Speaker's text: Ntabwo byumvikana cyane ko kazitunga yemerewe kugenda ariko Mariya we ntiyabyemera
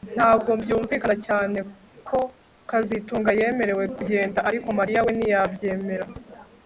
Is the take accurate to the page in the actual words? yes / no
yes